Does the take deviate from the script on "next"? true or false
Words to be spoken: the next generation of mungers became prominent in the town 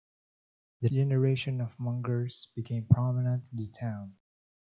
true